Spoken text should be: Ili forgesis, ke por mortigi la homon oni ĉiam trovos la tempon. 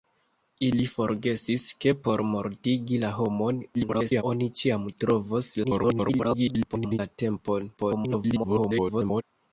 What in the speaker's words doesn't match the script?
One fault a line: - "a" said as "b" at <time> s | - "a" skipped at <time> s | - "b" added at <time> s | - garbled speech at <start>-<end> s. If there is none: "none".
- garbled speech at 3.7-4.2 s
- garbled speech at 5.6-7.0 s
- garbled speech at 7.8-9.2 s